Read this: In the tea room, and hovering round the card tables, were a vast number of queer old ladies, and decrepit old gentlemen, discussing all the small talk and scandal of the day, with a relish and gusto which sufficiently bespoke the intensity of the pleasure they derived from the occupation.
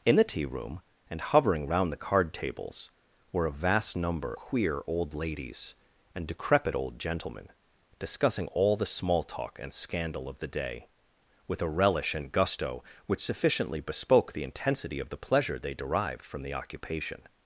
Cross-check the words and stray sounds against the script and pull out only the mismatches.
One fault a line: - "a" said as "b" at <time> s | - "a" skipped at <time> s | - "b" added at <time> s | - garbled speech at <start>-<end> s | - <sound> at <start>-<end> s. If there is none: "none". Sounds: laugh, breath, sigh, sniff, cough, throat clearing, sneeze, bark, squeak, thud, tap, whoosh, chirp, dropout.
- "of" skipped at 4.3 s